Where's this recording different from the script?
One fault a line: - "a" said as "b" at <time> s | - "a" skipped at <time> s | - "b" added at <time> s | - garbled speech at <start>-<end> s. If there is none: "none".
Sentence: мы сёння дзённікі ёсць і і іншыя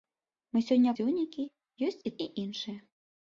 none